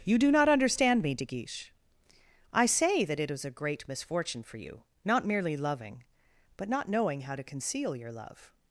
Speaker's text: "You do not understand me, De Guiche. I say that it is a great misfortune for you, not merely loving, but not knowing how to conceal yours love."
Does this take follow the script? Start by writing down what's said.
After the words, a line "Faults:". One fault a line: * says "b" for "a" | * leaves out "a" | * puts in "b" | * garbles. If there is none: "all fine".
"You do not understand me, De Guiche. I say that it is a great misfortune for you, not merely loving, but not knowing how to conceal your love."
Faults:
* says "your" for "yours"